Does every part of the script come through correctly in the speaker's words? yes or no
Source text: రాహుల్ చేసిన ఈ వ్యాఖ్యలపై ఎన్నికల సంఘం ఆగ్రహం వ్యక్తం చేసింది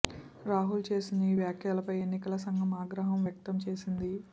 yes